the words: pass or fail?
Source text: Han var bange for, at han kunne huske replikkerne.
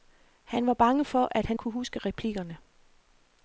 pass